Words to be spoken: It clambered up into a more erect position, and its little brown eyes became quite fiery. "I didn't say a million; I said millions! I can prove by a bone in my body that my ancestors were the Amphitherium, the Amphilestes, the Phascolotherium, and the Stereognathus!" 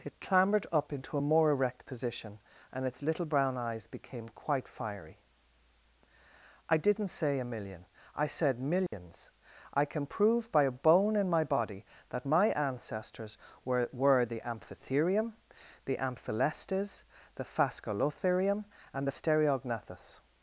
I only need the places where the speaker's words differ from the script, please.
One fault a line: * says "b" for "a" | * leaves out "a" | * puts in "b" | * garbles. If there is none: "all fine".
* puts in "were"